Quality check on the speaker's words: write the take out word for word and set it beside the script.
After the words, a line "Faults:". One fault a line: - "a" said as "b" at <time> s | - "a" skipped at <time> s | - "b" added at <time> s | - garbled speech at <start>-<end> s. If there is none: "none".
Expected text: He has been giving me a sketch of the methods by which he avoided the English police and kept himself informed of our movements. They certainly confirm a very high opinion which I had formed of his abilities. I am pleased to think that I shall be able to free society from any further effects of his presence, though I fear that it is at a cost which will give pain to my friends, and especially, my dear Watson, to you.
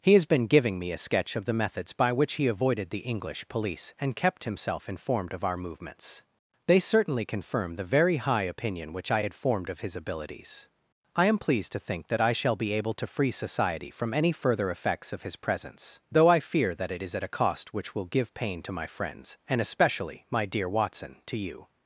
He has been giving me a sketch of the methods by which he avoided the English police and kept himself informed of our movements. They certainly confirm the very high opinion which I had formed of his abilities. I am pleased to think that I shall be able to free society from any further effects of his presence, though I fear that it is at a cost which will give pain to my friends, and especially, my dear Watson, to you.
Faults:
- "a" said as "the" at 7.8 s